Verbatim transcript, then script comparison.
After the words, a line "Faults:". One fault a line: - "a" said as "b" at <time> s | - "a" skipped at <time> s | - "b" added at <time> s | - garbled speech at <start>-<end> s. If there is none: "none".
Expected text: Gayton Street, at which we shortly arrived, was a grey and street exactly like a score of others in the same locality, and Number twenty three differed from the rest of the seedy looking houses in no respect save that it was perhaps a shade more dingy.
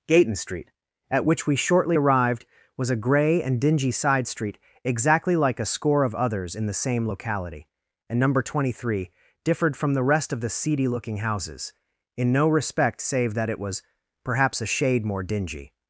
Gayton Street, at which we shortly arrived, was a grey and dingy side street exactly like a score of others in the same locality, and Number twenty three differed from the rest of the seedy looking houses in no respect save that it was perhaps a shade more dingy.
Faults:
- "dingy side" added at 3.6 s